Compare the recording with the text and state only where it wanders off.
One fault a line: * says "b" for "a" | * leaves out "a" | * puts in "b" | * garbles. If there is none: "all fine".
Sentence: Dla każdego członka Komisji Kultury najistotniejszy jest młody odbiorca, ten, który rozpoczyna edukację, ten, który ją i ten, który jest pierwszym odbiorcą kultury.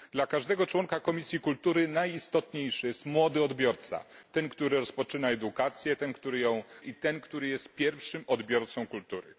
all fine